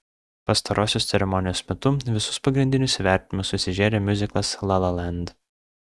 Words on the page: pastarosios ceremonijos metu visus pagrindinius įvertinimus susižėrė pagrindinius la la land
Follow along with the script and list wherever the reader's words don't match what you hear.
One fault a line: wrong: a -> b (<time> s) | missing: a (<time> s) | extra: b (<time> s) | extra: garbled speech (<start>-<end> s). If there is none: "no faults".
wrong: pagrindinius -> miuziklas (4.1 s)